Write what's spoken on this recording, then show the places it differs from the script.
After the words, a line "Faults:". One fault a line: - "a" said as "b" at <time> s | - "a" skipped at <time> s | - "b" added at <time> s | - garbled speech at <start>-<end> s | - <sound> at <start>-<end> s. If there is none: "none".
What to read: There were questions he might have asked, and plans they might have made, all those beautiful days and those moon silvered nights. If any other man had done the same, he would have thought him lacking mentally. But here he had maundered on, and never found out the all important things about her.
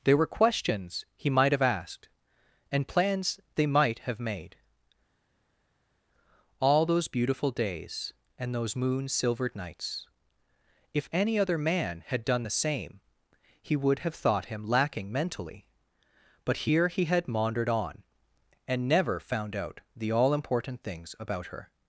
There were questions he might have asked, and plans they might have made, all those beautiful days and those moon silvered nights. If any other man had done the same, he would have thought him lacking mentally. But here he had maundered on, and never found out the all important things about her.
Faults:
none